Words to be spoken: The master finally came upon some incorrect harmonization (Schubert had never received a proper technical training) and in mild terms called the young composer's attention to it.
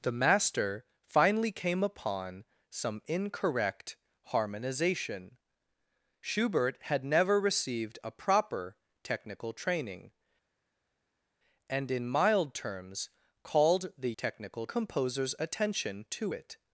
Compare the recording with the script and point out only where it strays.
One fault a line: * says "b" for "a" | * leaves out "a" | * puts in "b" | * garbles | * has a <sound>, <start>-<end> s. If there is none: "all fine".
* says "technical" for "young"